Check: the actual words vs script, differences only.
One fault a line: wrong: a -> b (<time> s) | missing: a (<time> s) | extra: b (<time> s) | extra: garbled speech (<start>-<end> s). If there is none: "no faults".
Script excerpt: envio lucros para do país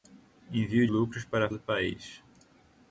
no faults